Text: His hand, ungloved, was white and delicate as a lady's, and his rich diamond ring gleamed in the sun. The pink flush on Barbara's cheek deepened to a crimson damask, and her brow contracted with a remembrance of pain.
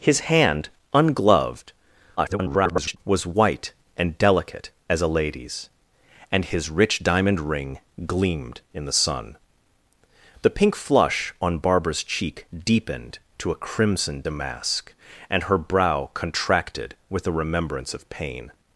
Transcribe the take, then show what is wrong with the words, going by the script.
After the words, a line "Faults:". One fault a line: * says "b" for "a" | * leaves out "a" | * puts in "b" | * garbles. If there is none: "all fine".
His hand, ungloved, [garbled] was white and delicate as a lady's, and his rich diamond ring gleamed in the sun. The pink flush on Barbara's cheek deepened to a crimson damask, and her brow contracted with a remembrance of pain.
Faults:
* garbles